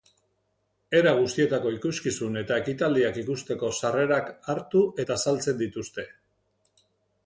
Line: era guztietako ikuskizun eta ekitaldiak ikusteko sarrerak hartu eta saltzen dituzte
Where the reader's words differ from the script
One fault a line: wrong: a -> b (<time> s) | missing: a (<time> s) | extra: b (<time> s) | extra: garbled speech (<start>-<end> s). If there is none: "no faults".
no faults